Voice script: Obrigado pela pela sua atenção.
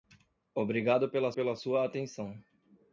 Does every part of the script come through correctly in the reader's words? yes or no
yes